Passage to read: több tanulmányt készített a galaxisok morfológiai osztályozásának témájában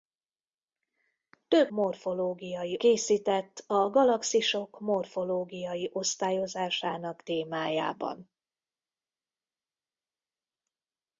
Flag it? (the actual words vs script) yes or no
yes